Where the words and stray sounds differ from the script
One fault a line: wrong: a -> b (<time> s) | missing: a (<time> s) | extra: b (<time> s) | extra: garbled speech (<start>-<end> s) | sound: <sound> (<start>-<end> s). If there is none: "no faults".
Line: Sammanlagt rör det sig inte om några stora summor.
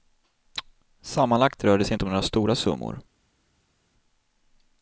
no faults